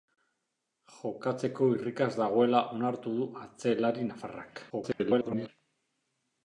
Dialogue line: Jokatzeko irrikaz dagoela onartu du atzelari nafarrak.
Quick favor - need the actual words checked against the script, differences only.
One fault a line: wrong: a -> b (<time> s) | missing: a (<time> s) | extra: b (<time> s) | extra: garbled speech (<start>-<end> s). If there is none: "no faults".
extra: garbled speech (4.7-5.5 s)